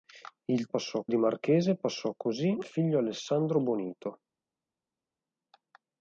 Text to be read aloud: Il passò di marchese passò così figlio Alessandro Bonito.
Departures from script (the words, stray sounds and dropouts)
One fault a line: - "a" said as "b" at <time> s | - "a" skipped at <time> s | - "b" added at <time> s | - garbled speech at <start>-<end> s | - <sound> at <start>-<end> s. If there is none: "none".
none